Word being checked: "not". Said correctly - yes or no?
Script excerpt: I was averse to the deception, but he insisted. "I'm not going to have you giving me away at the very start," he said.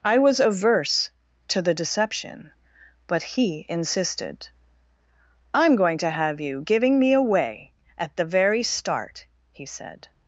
no